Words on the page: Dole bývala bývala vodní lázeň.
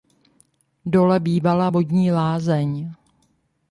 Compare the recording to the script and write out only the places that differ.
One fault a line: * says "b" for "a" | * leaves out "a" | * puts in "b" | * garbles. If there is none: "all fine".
* leaves out "bývala"